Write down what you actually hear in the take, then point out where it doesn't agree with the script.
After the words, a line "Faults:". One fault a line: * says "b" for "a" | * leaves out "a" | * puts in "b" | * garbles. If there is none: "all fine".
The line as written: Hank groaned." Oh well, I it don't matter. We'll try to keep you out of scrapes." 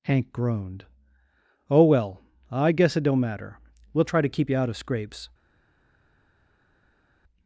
Hank groaned." Oh well, I guess it don't matter. We'll try to keep you out of scrapes."
Faults:
* puts in "guess"